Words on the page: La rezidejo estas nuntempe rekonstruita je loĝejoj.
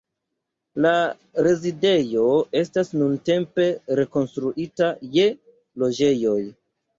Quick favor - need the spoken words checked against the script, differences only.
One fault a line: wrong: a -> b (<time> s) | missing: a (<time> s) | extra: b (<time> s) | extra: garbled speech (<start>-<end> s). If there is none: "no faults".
no faults